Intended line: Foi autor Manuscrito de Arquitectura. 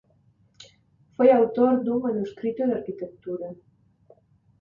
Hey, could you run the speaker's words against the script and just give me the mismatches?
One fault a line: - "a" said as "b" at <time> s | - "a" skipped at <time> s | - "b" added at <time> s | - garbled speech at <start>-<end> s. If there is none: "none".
- "dun" added at 1.9 s